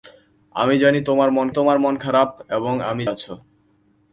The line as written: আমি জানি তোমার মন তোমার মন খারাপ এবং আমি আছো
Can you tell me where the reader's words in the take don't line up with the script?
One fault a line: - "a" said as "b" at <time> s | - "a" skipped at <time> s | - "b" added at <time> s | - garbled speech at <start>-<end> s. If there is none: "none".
none